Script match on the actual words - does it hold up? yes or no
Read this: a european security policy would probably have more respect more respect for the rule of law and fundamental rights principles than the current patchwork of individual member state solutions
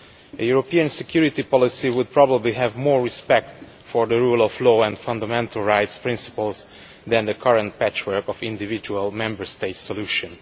no